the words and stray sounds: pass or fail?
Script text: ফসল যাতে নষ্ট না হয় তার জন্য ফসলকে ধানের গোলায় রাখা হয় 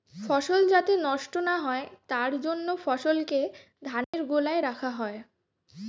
fail